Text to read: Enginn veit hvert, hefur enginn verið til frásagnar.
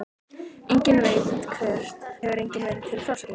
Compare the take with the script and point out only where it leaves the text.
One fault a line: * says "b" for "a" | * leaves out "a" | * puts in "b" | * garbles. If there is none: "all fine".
all fine